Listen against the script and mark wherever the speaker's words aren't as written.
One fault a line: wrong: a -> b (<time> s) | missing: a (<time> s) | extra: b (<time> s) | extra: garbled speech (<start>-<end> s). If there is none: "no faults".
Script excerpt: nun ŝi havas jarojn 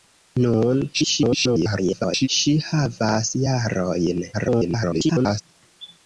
extra: garbled speech (0.9-2.3 s)
extra: garbled speech (4.3-5.4 s)